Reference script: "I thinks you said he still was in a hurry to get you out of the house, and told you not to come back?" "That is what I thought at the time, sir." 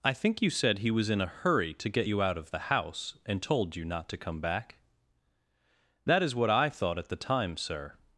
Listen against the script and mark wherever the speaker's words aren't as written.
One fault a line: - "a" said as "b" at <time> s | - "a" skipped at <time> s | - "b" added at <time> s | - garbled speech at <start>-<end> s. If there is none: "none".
- "thinks" said as "think" at 0.1 s
- "still" skipped at 0.9 s